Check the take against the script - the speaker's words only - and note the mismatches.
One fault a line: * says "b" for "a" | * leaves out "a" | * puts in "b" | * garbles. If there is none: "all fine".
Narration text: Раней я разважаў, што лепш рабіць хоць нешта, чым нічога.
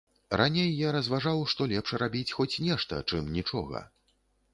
all fine